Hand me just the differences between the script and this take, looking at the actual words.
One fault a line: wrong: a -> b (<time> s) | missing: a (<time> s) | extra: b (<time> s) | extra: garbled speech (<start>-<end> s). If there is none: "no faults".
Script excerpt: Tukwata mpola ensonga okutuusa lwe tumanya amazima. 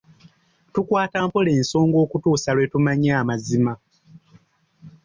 no faults